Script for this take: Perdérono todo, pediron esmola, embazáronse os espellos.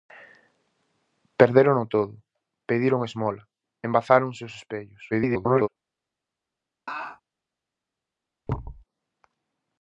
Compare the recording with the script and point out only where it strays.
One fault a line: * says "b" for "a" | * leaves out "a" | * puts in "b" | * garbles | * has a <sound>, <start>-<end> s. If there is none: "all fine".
* garbles
* has a laugh, 6.9-7.2 s
* has a thud, 8.5-8.8 s